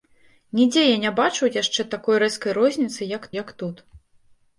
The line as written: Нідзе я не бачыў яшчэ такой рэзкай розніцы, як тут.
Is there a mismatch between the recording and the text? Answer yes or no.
yes